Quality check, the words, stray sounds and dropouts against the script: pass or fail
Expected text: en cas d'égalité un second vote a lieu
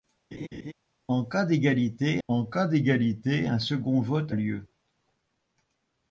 fail